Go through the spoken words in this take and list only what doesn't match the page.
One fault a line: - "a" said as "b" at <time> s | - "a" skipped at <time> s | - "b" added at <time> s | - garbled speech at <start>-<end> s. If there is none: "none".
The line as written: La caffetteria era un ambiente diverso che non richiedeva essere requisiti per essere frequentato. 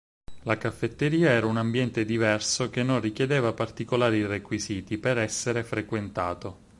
- "essere" said as "particolari" at 3.5 s